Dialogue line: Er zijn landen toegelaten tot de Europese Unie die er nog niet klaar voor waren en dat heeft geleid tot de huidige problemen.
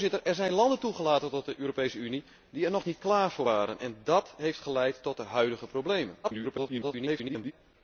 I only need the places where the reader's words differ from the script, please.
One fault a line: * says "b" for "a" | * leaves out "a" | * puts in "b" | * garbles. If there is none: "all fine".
* garbles